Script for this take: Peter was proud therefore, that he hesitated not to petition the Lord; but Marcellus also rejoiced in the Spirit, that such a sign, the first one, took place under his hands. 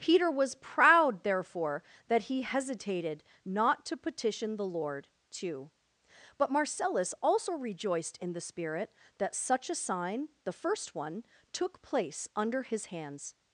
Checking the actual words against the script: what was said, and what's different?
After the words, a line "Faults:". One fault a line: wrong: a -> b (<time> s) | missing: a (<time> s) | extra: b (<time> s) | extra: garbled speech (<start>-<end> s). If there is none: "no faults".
Peter was proud therefore, that he hesitated not to petition the Lord; too but Marcellus also rejoiced in the Spirit, that such a sign, the first one, took place under his hands.
Faults:
extra: too (5.3 s)